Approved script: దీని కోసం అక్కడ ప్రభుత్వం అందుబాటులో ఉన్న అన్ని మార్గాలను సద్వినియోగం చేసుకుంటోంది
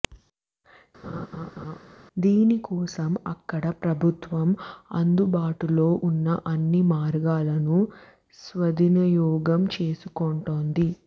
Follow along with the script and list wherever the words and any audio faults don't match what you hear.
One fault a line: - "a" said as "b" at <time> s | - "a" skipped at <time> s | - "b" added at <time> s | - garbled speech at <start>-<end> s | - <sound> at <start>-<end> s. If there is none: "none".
- laugh at 1.0-1.8 s